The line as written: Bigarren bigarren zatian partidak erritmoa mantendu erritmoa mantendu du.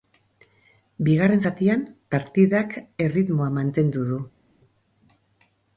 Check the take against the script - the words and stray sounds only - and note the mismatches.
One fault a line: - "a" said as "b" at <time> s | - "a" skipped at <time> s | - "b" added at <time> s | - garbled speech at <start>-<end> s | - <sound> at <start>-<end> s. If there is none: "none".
- "bigarren" skipped at 1.4 s
- "erritmoa mantendu" skipped at 4.1 s